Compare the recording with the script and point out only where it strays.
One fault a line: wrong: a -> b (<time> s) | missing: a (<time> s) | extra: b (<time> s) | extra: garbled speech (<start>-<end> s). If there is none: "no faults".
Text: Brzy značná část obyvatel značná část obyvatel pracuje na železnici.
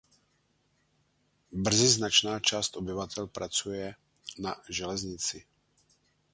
missing: značná část obyvatel (3.3 s)